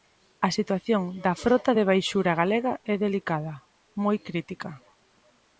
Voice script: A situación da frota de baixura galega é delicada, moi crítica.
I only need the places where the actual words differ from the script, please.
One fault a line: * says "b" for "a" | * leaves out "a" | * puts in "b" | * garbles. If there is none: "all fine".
all fine